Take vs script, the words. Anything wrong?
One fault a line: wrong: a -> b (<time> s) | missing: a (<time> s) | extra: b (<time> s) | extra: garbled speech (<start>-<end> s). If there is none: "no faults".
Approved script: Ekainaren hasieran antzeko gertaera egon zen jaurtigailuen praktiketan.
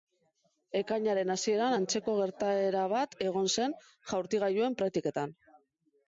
extra: bat (2.9 s)